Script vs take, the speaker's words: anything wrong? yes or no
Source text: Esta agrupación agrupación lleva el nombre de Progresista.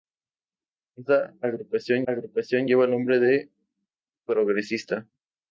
no